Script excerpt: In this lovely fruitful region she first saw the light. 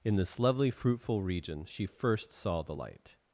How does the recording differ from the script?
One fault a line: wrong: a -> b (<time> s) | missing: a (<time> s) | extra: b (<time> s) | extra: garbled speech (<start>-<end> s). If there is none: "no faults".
no faults